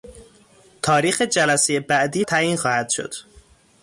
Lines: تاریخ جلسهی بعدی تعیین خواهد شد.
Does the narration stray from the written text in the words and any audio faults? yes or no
no